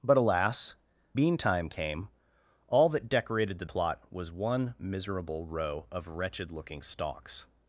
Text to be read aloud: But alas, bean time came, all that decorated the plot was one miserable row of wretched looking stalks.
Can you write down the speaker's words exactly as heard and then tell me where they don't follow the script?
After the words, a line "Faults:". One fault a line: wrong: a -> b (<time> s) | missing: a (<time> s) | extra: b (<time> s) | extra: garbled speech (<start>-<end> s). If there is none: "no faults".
But alas, bean time came, all that decorated the plot was one miserable row of wretched looking stalks.
Faults:
no faults